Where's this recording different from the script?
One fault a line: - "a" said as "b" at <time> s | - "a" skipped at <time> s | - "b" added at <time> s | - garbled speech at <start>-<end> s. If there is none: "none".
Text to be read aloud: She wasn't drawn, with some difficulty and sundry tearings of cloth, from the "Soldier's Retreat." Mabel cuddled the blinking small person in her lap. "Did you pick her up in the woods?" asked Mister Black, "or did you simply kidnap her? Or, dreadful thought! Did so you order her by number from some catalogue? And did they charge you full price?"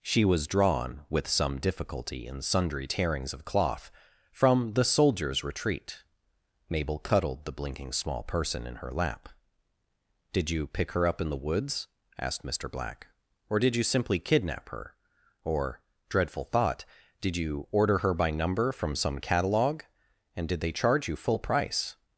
- "wasn't" said as "was" at 0.2 s
- "so" skipped at 17.3 s